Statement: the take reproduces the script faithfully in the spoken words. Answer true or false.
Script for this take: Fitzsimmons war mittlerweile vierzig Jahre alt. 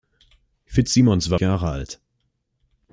false